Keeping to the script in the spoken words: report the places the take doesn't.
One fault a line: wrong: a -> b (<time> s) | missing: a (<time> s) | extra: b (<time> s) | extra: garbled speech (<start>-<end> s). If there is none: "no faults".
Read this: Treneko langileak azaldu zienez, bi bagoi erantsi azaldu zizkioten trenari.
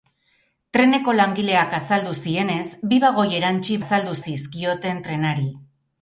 no faults